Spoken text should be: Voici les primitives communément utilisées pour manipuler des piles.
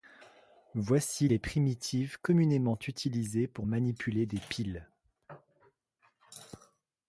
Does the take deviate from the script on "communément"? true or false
false